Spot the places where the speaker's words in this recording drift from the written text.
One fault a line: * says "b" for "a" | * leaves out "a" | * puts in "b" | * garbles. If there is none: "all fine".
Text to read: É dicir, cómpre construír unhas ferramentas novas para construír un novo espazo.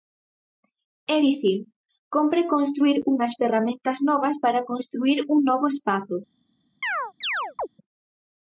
all fine